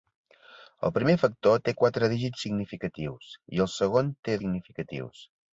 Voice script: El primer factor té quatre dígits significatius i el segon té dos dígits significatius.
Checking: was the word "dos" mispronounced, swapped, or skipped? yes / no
yes